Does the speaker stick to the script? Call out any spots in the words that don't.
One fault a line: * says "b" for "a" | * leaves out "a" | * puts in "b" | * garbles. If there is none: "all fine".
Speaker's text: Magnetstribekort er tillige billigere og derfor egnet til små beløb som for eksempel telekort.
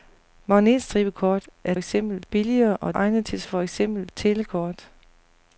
* says "eksempel" for "tillige"
* leaves out "derfor"
* leaves out "små beløb som"